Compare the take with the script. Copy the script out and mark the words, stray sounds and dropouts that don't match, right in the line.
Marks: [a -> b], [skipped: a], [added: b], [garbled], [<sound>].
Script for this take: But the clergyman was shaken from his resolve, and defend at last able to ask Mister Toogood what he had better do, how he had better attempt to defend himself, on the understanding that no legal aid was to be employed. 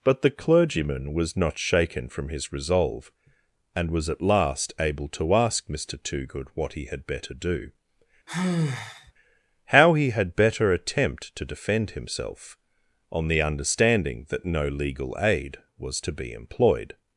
But the clergyman was [added: not] shaken from his resolve, and [defend -> was] at last able to ask Mister Toogood what he had better do, [sigh] how he had better attempt to defend himself, on the understanding that no legal aid was to be employed.